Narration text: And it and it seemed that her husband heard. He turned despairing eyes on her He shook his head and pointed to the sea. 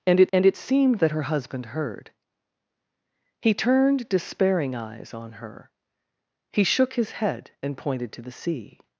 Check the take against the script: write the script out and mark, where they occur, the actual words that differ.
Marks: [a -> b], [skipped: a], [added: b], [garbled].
And it and it seemed that her husband heard. He turned despairing eyes on her He shook his head and pointed to the sea.